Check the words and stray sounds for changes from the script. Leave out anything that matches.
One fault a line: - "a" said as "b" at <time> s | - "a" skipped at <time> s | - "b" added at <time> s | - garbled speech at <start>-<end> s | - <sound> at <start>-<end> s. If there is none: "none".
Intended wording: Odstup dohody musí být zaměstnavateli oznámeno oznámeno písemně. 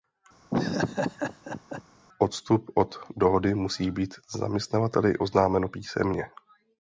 - laugh at 0.5-1.8 s
- "od" added at 2.7 s
- "oznámeno" skipped at 5.7 s